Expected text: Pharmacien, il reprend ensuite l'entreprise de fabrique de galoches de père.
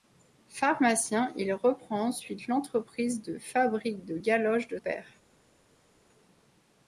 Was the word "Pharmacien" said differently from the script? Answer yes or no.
no